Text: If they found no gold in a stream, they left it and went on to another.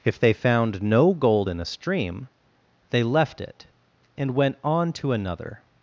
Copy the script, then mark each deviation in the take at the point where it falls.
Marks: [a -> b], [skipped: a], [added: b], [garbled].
If they found no gold in a stream, they left it and went on to another.